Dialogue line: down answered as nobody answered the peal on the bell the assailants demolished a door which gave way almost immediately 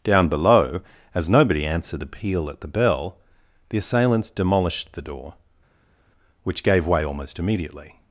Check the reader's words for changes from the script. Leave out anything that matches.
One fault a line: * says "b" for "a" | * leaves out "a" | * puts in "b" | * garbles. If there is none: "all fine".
* says "below" for "answered"
* says "at" for "on"
* says "the" for "a"